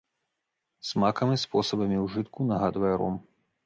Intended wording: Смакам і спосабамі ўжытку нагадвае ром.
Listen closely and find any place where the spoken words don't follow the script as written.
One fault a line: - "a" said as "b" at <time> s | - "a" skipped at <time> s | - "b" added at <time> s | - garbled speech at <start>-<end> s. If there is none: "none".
none